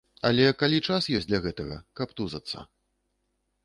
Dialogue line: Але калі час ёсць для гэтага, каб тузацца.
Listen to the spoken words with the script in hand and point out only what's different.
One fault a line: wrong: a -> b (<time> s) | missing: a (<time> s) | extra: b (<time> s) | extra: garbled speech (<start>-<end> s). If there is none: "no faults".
no faults